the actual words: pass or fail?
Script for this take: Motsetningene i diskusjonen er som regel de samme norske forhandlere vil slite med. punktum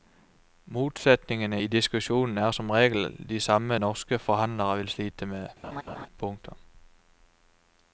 pass